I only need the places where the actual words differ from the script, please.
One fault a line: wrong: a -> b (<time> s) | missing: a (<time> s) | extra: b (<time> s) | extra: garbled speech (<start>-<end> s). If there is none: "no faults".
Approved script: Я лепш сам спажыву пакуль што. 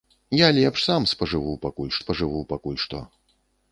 extra: спажыву пакуль (2.0 s)